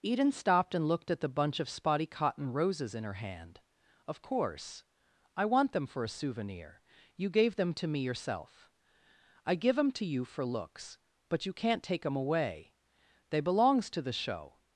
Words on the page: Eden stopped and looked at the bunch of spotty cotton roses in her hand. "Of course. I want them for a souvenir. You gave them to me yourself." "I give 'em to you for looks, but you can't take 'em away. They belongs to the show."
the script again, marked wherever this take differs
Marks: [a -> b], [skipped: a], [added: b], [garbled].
Eden stopped and looked at the bunch of spotty cotton roses in her hand. "Of course. I want them for a souvenir. You gave them to me yourself." "I give 'em to you for looks, but you can't take 'em away. They belongs to the show."